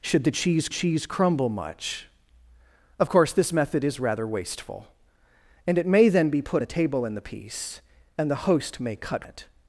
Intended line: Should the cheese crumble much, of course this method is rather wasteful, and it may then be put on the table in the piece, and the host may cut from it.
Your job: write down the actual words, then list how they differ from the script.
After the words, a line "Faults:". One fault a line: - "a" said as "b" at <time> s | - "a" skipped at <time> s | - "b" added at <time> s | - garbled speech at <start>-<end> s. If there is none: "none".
Should the cheese cheese crumble much, of course this method is rather wasteful, and it may then be put the table in the piece, and the host may cut it.
Faults:
- "cheese" added at 0.7 s
- "on" skipped at 6.6 s
- "from" skipped at 9.3 s